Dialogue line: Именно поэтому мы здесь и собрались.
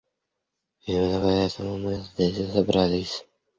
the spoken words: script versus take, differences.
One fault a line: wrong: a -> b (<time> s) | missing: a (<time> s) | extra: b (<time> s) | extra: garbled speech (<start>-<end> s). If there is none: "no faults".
no faults